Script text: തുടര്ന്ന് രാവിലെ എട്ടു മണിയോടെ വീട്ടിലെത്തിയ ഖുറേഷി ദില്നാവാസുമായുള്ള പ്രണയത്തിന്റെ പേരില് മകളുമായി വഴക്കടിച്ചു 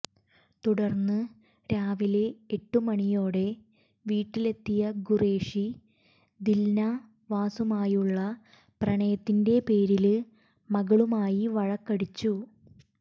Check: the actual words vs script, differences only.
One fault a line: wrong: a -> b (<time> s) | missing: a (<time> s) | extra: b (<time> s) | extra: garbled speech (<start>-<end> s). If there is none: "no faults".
no faults